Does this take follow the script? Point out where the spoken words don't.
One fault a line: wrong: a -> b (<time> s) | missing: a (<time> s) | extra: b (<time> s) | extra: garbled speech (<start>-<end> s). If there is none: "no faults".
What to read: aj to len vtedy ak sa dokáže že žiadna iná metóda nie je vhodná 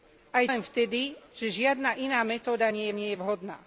missing: to (0.5 s)
missing: ak sa dokáže (1.2 s)
extra: nie (2.9 s)